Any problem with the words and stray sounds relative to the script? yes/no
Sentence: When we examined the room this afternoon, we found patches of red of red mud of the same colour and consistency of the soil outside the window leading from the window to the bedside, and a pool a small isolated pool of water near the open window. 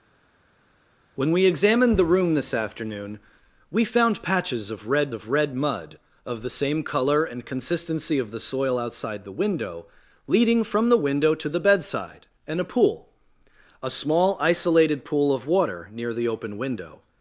no